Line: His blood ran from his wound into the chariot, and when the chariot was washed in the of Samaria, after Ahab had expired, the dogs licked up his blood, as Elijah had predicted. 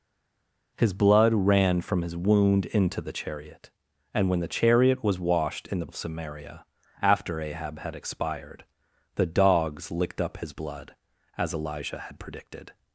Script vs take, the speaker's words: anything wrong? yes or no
no